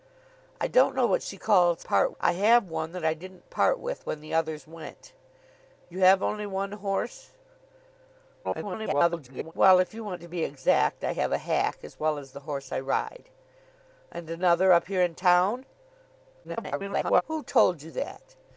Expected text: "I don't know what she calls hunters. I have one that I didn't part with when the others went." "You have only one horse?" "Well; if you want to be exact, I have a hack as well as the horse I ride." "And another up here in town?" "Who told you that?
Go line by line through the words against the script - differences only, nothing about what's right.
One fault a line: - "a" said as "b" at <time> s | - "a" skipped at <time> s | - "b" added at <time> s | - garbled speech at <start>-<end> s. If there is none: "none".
- "hunters" said as "part" at 1.8 s
- garbled speech at 8.4-9.5 s
- garbled speech at 16.4-17.2 s